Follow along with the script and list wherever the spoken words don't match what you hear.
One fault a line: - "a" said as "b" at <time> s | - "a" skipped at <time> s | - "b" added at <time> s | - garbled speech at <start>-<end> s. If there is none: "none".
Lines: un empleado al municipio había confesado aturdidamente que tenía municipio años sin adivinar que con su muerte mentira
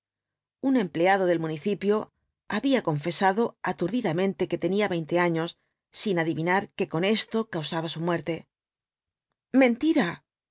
- "al" said as "del" at 1.3 s
- "municipio" said as "veinte" at 5.0 s
- "esto causaba" added at 7.0 s